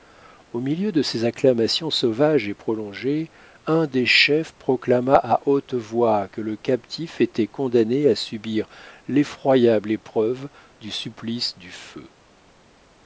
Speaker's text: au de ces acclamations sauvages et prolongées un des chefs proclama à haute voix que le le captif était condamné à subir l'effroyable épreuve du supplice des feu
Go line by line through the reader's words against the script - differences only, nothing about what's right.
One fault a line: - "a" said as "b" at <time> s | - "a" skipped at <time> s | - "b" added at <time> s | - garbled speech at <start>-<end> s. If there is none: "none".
- "milieu" added at 0.6 s
- "le" skipped at 6.6 s
- "des" said as "du" at 11.6 s